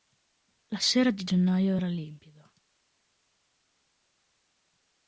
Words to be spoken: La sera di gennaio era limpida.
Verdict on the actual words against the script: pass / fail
pass